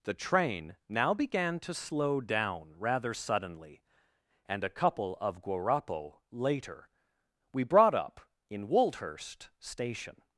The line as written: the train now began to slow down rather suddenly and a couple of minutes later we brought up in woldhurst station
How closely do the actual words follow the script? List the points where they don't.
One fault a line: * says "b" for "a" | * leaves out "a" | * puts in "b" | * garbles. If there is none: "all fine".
* says "guarapo" for "minutes"